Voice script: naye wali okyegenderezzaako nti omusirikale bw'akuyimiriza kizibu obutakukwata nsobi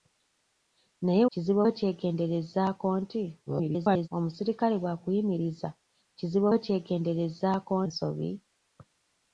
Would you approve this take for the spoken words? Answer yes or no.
no